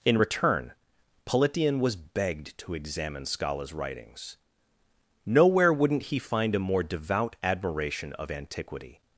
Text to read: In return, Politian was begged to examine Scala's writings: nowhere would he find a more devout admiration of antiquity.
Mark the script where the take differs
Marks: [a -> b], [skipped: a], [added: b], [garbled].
In return, Politian was begged to examine Scala's writings: nowhere [would -> wouldn't] he find a more devout admiration of antiquity.